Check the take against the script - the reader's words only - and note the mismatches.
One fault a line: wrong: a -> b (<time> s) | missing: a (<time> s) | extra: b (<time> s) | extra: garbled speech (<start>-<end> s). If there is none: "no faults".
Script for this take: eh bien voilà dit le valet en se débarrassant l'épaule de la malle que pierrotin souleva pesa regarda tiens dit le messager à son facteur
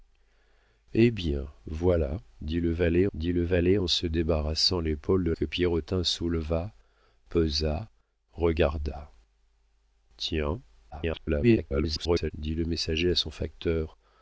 extra: dit le valet (3.1 s)
missing: la malle (5.3 s)
extra: garbled speech (10.9-12.3 s)